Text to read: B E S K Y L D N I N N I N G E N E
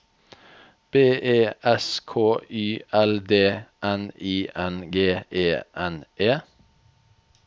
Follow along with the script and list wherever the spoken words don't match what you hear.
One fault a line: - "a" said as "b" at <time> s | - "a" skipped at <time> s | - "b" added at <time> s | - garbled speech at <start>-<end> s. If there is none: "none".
- "N I N" skipped at 4.9 s